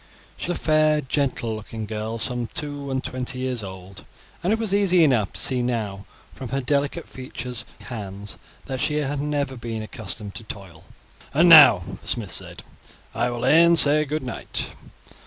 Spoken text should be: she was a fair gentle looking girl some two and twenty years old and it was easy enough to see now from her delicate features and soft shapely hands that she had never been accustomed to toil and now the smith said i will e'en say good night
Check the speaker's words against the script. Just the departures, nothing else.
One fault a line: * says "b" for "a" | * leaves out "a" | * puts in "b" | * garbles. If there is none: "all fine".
* leaves out "was"
* leaves out "and soft shapely"